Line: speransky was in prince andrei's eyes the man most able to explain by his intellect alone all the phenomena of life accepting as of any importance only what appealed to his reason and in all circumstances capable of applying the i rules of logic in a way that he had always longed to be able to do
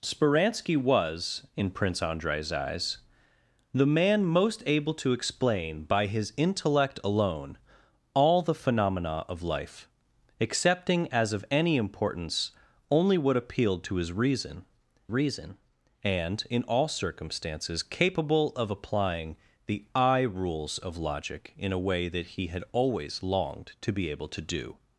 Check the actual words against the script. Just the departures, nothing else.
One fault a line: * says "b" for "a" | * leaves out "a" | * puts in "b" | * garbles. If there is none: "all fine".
* puts in "reason"